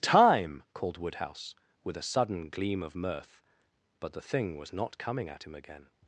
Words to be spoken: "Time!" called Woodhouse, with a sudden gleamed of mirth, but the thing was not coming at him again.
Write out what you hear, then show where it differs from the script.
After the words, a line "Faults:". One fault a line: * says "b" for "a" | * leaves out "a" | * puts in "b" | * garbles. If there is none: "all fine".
"Time!" called Woodhouse, with a sudden gleam of mirth, but the thing was not coming at him again.
Faults:
* says "gleam" for "gleamed"